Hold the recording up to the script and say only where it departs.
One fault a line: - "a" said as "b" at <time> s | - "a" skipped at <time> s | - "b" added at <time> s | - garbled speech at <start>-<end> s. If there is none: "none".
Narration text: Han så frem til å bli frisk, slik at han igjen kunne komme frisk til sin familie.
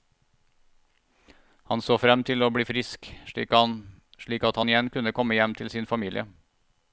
- "frisk" said as "hjem" at 5.3 s